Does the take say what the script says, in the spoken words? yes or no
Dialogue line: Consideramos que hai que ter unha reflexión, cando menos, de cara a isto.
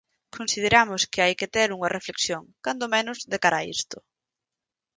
yes